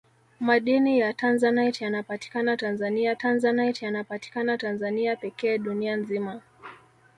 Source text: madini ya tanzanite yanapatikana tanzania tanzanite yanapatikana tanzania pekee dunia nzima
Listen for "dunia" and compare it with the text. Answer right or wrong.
right